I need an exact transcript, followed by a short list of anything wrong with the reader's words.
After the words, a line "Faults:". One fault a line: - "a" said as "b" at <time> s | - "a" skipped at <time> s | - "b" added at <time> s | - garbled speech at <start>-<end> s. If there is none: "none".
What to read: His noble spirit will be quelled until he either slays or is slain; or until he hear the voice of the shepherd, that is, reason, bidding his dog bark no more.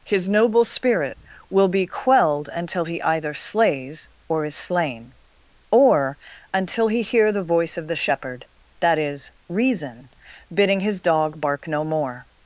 His noble spirit will be quelled until he either slays or is slain; or until he hear the voice of the shepherd, that is, reason, bidding his dog bark no more.
Faults:
none